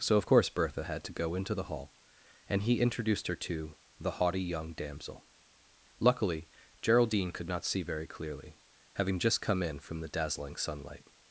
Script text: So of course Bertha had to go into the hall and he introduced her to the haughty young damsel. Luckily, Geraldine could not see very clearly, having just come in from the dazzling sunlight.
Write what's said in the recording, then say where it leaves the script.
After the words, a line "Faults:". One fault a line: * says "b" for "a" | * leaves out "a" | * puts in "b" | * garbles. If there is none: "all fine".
So of course Bertha had to go into the hall and he introduced her to the haughty young damsel. Luckily, Geraldine could not see very clearly, having just come in from the dazzling sunlight.
Faults:
all fine